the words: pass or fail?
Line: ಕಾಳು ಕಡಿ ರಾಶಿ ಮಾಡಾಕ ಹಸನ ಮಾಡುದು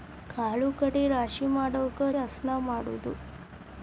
pass